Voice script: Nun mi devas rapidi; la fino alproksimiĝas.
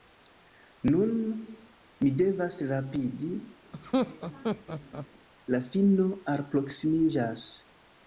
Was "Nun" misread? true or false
false